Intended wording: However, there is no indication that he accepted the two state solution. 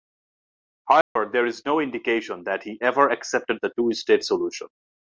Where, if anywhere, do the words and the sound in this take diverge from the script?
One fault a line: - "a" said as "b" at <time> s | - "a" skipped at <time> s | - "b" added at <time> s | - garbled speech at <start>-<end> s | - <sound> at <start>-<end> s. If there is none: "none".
- dropout at 1.0-1.2 s
- "ever" added at 2.8 s